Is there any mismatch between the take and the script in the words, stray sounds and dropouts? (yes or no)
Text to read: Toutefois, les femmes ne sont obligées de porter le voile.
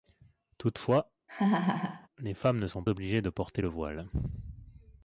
yes